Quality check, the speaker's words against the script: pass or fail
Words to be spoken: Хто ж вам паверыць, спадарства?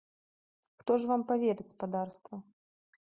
pass